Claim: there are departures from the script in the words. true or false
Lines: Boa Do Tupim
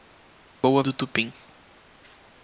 false